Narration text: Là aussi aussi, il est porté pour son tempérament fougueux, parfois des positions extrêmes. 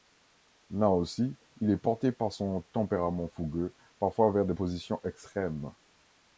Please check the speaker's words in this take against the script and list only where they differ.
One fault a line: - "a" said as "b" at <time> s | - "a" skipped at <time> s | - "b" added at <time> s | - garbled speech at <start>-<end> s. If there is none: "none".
- "aussi" skipped at 1.4 s
- "pour" said as "par" at 2.1 s
- "vers" added at 4.3 s